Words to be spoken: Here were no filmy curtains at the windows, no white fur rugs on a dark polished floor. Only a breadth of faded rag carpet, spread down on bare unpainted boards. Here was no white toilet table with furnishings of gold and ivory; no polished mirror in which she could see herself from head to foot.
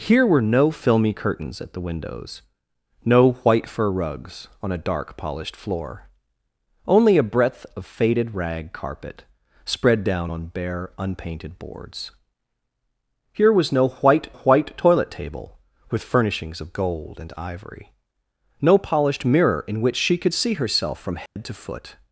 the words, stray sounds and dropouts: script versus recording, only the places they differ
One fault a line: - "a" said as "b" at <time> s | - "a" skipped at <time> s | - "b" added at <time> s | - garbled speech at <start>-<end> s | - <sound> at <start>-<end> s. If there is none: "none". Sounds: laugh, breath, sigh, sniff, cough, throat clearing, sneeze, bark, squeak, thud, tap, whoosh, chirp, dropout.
- "white" added at 14.3 s
- dropout at 21.3-21.4 s